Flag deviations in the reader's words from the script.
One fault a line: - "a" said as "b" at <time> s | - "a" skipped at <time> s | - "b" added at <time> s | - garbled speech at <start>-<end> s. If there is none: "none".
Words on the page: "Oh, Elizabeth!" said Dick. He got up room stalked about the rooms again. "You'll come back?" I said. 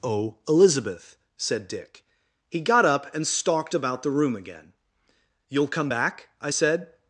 - "room" said as "and" at 3.1 s
- "rooms" said as "room" at 4.1 s